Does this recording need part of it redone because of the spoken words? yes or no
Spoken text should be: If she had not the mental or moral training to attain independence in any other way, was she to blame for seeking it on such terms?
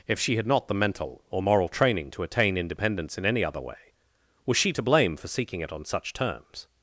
no